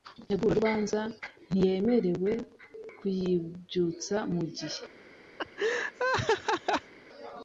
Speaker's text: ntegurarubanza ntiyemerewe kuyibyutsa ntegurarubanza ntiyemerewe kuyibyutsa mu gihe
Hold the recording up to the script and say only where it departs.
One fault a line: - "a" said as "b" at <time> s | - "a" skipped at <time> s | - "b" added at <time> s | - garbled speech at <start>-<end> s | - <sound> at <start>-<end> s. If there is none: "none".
- "ntegurarubanza ntiyemerewe kuyibyutsa" skipped at 4.2 s
- laugh at 5.4-6.9 s